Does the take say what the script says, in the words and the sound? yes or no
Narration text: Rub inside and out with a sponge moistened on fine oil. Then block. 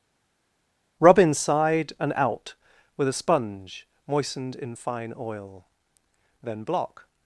no